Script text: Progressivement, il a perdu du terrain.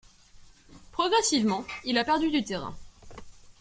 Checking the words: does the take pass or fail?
pass